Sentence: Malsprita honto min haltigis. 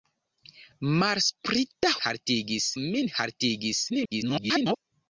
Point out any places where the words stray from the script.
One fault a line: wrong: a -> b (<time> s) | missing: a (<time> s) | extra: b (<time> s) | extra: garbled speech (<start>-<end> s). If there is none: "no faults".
wrong: honto -> haltigis (2.0 s)
extra: garbled speech (3.9-4.8 s)